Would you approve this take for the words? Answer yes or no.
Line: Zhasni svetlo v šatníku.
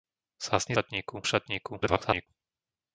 no